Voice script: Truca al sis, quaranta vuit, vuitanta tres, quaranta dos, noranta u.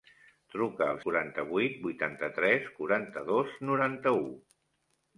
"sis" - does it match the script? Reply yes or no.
no